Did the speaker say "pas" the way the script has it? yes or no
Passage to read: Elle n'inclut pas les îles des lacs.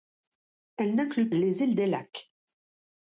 no